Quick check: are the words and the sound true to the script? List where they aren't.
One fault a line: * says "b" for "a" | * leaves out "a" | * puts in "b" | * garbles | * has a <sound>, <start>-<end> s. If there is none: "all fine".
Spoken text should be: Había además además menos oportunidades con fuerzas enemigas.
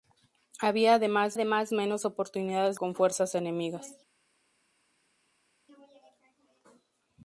all fine